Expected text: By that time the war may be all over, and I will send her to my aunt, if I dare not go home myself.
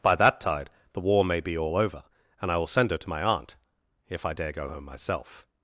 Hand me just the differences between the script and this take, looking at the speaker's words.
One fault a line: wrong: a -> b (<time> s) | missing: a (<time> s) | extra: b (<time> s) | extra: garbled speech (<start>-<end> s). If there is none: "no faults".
wrong: time -> tide (0.4 s)
missing: not (4.5 s)